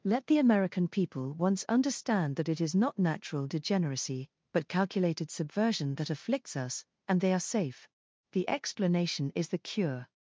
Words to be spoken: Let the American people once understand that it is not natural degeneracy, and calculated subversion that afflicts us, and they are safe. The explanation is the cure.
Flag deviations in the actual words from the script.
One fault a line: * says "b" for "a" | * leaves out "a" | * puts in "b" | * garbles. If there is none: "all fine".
* says "but" for "and"